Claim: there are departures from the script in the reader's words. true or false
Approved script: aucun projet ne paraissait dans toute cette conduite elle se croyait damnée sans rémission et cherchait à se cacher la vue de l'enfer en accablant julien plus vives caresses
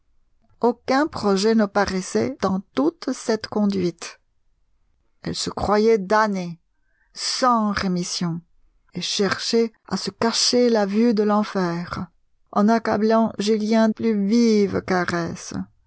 false